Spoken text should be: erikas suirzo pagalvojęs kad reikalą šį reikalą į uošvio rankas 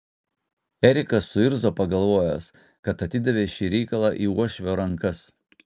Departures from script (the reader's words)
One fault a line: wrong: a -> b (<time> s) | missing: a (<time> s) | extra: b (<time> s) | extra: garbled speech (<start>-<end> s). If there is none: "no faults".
wrong: reikalą -> atidavė (3.1 s)